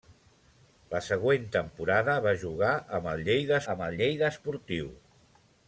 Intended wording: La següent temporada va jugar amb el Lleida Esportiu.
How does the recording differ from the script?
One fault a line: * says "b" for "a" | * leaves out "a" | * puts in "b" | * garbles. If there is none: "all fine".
* puts in "amb el Lleida"